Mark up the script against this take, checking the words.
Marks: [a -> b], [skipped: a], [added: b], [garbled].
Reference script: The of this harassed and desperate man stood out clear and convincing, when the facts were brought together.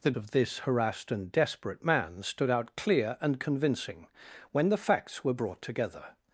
The of this harassed and desperate man stood out clear and convincing, when the facts were brought together.